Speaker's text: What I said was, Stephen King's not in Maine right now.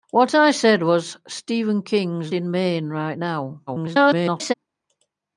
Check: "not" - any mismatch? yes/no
yes